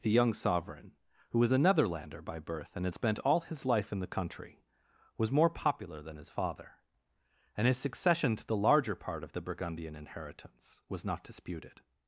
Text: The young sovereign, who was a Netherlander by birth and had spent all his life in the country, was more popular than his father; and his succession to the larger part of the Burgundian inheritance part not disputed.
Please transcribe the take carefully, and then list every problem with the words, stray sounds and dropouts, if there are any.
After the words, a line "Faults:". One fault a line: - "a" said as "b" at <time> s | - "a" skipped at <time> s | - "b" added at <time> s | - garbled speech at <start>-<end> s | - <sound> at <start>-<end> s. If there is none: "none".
The young sovereign, who was a Netherlander by birth and had spent all his life in the country, was more popular than his father; and his succession to the larger part of the Burgundian inheritance was not disputed.
Faults:
- "part" said as "was" at 10.9 s